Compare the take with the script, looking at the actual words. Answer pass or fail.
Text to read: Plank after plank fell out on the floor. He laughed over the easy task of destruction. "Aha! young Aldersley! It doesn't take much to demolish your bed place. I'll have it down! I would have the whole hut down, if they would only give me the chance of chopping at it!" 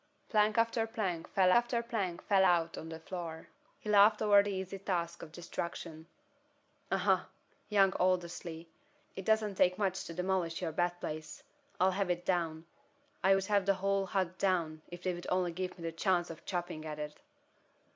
fail